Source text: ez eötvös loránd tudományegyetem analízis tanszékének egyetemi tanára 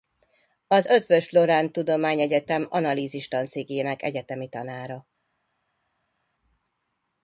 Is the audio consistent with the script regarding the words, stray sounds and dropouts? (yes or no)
no